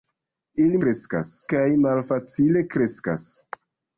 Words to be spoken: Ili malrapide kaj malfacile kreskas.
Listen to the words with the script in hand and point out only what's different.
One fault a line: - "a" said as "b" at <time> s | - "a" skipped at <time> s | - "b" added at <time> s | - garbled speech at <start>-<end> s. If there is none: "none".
- "malrapide" said as "kreskas" at 0.8 s